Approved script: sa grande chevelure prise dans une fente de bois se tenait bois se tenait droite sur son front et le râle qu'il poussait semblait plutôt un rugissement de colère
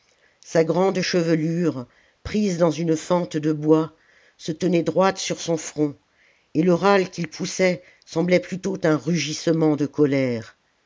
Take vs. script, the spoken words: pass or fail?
fail